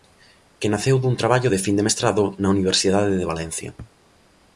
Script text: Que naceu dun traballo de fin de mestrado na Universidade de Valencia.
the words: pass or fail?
pass